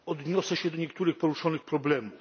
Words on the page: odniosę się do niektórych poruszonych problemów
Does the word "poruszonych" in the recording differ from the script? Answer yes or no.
no